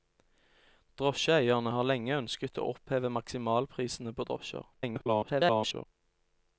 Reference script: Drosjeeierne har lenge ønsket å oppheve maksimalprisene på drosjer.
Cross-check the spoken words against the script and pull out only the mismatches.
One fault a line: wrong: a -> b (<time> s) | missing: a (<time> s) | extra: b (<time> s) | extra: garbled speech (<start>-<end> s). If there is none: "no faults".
extra: garbled speech (4.7-5.9 s)